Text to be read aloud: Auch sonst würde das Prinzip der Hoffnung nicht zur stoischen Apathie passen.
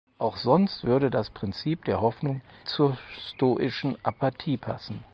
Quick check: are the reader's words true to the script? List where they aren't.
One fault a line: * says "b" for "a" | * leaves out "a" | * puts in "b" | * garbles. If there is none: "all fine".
* leaves out "nicht"